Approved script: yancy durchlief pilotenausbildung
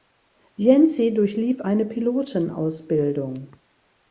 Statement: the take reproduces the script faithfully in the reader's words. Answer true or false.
false